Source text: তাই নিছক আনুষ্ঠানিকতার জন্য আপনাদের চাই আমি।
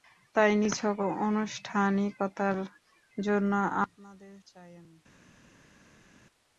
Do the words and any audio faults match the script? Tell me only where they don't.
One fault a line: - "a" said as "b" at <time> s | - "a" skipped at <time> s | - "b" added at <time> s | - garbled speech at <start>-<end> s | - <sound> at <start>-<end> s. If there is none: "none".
none